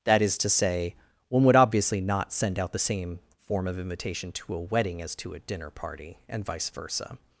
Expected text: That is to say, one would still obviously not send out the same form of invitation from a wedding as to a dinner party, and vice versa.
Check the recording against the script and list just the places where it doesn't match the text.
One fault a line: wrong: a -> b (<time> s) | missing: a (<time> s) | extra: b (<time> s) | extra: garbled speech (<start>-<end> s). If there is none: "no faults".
missing: still (1.6 s)
wrong: from -> to (4.3 s)